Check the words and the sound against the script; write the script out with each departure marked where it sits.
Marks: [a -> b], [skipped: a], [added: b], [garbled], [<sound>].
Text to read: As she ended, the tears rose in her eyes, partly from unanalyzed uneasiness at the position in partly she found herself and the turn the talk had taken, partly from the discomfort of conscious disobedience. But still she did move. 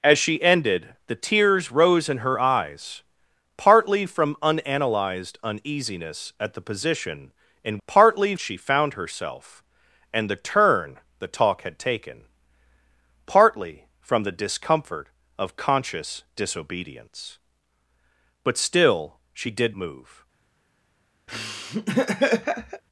As she ended, the tears rose in her eyes, partly from unanalyzed uneasiness at the position in partly she found herself and the turn the talk had taken, partly from the discomfort of conscious disobedience. But still she did move. [laugh]